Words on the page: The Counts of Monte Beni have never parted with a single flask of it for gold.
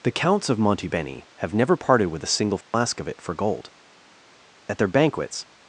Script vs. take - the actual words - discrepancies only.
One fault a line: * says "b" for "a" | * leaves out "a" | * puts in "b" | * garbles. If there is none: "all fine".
* puts in "At their banquets"